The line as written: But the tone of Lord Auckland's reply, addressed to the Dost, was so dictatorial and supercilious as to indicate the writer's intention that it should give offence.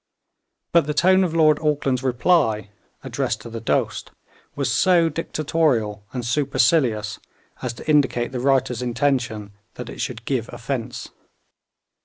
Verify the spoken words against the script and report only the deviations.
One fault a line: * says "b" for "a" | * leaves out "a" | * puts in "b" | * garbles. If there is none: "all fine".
all fine